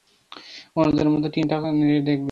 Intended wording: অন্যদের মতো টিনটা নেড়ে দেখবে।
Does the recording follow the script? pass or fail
pass